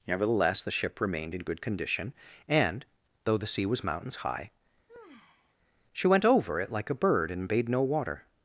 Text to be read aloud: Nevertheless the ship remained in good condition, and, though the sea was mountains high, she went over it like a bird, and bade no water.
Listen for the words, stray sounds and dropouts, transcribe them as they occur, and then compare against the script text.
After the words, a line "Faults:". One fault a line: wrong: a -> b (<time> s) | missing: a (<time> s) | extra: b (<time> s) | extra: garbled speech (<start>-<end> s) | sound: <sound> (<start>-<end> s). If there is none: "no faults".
Nevertheless the ship remained in good condition, and, though the sea was mountains high, she went over it like a bird, and bade no water.
Faults:
sound: sigh (4.9-5.6 s)